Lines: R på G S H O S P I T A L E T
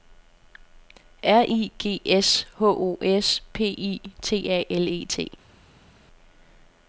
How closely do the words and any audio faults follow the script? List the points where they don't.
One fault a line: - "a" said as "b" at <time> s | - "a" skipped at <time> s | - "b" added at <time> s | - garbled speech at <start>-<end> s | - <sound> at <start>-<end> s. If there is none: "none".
- "på" said as "I" at 1.5 s